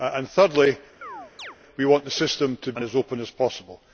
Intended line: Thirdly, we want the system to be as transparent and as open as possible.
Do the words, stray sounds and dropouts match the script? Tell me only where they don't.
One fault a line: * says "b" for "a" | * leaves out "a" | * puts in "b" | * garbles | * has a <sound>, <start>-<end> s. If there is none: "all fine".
* has a chirp, 1.0-1.6 s
* leaves out "be as transparent"